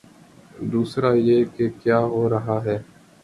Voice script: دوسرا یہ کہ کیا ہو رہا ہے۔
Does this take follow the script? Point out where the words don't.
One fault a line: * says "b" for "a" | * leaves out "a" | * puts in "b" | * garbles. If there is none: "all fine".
all fine